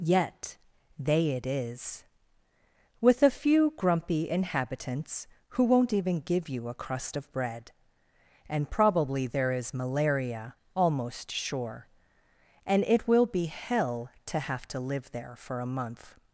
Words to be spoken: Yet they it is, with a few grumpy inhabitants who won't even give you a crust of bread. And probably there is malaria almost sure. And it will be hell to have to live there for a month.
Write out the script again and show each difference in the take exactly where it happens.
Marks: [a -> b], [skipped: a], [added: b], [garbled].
Yet they it is, with a few grumpy inhabitants who won't even give you a crust of bread. And probably there is malaria almost sure. And it will be hell to have to live there for a month.